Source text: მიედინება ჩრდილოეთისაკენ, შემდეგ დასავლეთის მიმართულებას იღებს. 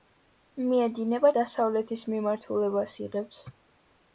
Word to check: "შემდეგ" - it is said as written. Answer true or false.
false